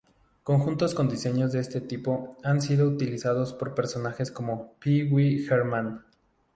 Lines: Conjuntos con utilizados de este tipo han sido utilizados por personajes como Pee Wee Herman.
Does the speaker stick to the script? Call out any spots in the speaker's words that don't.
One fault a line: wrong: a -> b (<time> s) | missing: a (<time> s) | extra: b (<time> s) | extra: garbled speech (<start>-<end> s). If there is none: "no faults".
wrong: utilizados -> diseños (1.1 s)